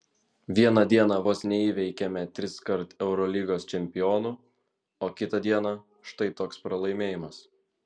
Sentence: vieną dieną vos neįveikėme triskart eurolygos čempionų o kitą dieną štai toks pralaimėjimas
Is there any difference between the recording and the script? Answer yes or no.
no